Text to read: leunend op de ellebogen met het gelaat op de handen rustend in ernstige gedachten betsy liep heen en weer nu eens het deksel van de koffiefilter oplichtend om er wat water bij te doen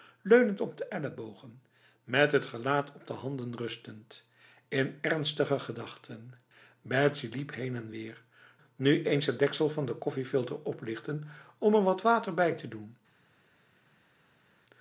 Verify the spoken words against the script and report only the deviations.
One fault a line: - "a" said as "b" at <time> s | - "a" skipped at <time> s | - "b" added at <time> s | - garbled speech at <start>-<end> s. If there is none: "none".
none